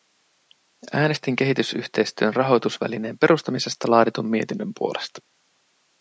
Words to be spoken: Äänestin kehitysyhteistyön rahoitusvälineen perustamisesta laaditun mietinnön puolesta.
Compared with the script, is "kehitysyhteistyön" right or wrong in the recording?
right